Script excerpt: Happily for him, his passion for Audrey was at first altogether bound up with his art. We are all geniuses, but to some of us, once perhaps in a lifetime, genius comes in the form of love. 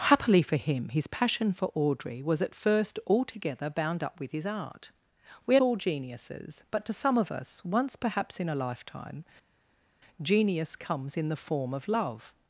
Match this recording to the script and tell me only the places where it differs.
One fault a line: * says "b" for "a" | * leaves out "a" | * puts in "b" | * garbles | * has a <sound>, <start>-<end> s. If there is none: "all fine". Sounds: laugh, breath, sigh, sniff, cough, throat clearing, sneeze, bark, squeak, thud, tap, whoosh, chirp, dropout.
all fine